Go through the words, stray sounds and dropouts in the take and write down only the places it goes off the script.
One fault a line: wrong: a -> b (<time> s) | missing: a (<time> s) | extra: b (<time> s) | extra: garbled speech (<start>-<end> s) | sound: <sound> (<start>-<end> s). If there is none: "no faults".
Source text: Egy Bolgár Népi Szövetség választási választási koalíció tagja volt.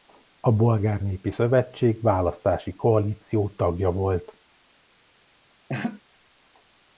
wrong: Egy -> A (0.4 s)
missing: választási (2.7 s)
sound: laugh (5.7-6.0 s)